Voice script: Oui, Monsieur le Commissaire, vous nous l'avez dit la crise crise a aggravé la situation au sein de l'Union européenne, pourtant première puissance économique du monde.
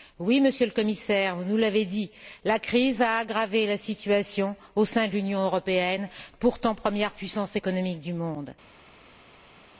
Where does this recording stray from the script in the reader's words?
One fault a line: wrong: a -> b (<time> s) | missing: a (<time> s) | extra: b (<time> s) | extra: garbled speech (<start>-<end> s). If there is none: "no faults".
missing: crise (3.0 s)